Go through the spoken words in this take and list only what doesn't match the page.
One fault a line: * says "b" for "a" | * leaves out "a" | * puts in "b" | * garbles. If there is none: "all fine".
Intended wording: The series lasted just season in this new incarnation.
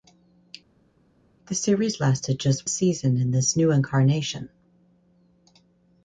all fine